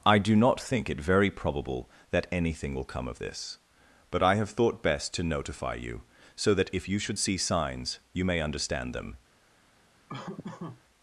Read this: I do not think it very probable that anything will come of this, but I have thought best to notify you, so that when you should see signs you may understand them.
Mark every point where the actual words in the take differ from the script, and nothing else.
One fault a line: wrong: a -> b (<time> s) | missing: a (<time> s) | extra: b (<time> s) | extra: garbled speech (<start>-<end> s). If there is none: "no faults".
wrong: when -> if (6.7 s)